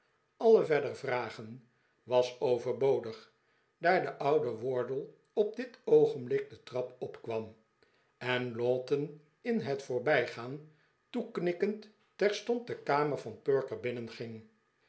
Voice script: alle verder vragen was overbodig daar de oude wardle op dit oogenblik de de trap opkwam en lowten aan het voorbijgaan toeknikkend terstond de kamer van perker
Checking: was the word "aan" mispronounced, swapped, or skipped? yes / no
yes